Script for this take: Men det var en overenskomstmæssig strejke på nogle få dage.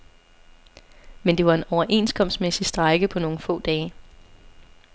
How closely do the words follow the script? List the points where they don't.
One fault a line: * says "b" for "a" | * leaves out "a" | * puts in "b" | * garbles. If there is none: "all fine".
all fine